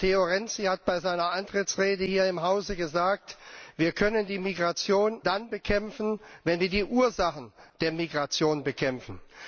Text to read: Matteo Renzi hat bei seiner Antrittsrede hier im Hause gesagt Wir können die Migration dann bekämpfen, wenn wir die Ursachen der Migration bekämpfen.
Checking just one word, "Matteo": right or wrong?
right